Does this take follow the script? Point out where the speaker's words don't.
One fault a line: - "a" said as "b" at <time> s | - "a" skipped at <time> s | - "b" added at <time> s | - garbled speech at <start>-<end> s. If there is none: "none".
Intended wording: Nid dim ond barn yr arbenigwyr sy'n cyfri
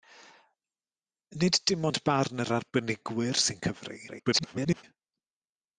- garbled speech at 4.1-4.8 s